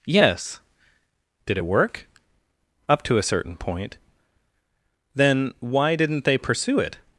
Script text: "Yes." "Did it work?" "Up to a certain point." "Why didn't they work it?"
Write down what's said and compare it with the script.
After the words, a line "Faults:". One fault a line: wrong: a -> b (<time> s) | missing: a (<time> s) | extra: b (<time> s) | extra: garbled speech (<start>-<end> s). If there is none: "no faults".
"Yes." "Did it work?" "Up to a certain point." "Then why didn't they pursue it?"
Faults:
extra: Then (5.1 s)
wrong: work -> pursue (6.4 s)